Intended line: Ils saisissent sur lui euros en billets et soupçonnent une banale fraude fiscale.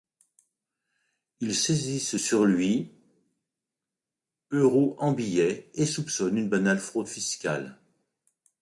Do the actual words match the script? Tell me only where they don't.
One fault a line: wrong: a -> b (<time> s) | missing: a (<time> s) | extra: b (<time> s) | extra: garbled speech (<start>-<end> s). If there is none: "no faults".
no faults